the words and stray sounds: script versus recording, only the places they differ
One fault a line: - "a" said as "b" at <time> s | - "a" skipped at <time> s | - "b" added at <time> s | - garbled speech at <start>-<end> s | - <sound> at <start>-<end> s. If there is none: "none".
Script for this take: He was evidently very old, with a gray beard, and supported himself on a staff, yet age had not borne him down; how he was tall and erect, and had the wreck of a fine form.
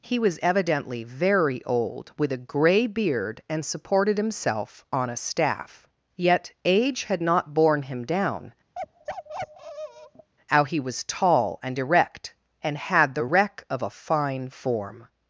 - bark at 8.7-10.3 s